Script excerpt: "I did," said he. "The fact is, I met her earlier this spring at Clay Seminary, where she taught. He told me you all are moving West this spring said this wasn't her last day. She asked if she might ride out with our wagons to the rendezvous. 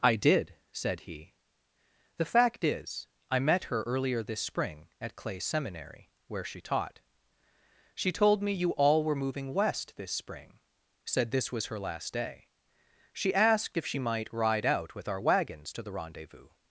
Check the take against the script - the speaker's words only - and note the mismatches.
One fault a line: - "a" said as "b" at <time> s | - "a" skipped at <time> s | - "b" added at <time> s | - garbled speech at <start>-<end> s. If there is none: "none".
- "He" said as "She" at 7.9 s
- "are" said as "were" at 9.0 s
- "wasn't" said as "was" at 11.5 s